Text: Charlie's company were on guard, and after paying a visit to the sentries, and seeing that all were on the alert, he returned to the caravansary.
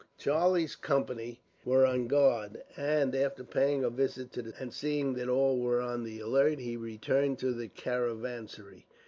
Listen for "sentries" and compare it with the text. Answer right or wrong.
wrong